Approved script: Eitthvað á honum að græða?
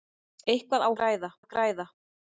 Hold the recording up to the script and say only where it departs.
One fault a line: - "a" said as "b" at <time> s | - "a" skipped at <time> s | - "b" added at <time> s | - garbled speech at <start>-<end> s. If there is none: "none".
- "honum" said as "græða" at 1.0 s